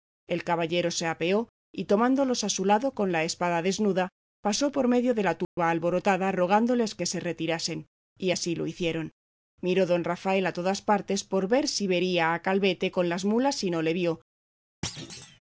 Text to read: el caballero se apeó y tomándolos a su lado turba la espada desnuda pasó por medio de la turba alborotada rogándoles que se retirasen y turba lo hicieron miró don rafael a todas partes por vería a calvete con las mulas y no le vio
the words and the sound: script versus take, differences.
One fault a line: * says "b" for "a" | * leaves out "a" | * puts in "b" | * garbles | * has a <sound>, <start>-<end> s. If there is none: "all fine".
* says "con" for "turba"
* has a dropout, 5.4-5.6 s
* says "así" for "turba"
* puts in "ver si"
* has a thud, 14.8-15.4 s